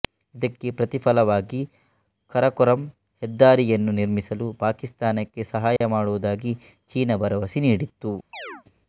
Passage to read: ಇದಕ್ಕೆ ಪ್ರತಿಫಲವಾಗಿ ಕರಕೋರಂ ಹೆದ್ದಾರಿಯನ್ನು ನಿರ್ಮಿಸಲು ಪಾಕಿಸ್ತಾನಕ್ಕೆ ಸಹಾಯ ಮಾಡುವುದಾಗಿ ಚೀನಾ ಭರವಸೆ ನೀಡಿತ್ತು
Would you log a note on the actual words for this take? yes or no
no